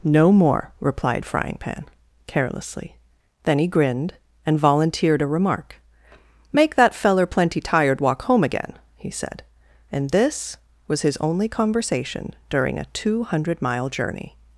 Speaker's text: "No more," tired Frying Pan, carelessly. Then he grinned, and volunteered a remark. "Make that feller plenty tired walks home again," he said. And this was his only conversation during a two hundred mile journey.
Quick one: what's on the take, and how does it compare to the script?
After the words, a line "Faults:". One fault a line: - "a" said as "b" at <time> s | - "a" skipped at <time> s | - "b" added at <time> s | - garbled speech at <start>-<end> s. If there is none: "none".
"No more," replied Frying Pan, carelessly. Then he grinned, and volunteered a remark. "Make that feller plenty tired walk home again," he said. And this was his only conversation during a two hundred mile journey.
Faults:
- "tired" said as "replied" at 0.8 s
- "walks" said as "walk" at 8.0 s